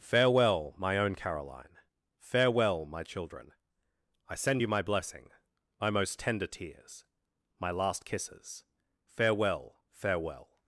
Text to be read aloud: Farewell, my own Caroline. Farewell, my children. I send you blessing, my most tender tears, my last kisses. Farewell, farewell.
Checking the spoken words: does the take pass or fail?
fail